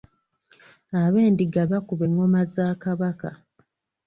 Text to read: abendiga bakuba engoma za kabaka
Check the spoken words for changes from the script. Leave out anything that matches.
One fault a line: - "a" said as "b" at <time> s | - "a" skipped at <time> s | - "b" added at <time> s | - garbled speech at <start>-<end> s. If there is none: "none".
none